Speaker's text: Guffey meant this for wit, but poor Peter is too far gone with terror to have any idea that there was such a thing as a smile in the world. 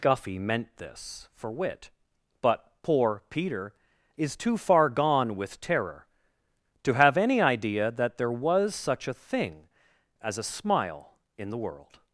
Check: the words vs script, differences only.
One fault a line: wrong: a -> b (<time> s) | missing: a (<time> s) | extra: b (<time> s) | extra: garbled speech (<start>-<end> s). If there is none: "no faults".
no faults